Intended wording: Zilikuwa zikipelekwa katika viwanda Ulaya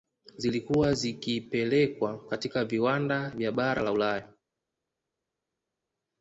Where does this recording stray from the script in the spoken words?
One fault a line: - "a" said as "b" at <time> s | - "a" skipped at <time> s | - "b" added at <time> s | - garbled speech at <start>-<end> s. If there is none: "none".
- "vya bara la" added at 3.3 s